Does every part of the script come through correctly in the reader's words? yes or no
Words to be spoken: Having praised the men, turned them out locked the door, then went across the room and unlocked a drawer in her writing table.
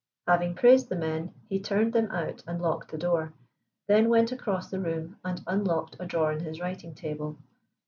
no